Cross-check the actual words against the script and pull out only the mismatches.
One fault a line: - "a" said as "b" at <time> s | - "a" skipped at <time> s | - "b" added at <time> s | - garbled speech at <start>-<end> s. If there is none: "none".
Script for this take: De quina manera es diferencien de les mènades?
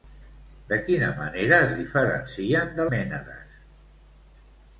- "les" skipped at 2.9 s